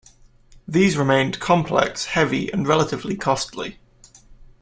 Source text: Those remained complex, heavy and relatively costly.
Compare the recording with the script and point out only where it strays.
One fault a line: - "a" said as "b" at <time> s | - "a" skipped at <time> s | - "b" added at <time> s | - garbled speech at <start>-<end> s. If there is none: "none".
- "Those" said as "These" at 0.7 s